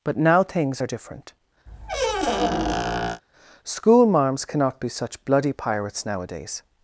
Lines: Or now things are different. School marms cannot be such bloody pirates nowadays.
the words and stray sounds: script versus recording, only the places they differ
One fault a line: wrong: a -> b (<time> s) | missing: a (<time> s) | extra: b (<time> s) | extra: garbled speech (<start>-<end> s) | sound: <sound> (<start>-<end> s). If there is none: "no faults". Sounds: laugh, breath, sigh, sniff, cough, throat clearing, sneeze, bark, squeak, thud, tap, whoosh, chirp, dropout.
wrong: Or -> But (0.0 s)
sound: squeak (1.7-3.2 s)